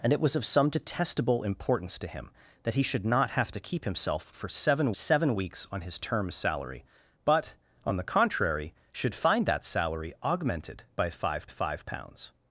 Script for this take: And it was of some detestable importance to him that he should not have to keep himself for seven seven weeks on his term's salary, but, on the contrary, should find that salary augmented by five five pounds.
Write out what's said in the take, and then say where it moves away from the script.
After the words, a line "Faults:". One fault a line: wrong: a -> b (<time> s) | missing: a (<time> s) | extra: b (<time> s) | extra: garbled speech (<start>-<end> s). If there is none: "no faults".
And it was of some detestable importance to him that he should not have to keep himself for seven seven weeks on his term's salary, but, on the contrary, should find that salary augmented by five five pounds.
Faults:
no faults